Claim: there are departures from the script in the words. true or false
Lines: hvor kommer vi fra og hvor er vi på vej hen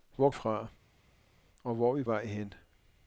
true